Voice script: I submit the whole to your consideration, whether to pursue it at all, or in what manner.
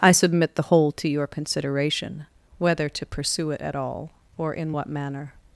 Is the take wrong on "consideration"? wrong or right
right